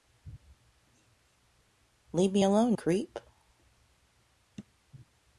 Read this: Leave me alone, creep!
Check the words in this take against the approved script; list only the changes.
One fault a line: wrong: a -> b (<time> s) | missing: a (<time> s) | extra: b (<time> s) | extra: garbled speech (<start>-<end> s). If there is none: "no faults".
no faults